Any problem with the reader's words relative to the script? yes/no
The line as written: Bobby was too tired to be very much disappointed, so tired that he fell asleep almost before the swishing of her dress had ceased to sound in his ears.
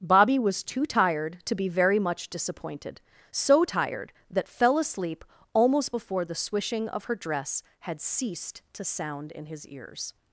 yes